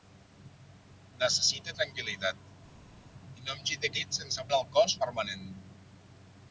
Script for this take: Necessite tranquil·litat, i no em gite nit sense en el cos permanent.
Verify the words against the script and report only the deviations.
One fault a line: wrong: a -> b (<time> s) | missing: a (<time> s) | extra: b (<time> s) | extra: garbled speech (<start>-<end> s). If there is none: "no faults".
no faults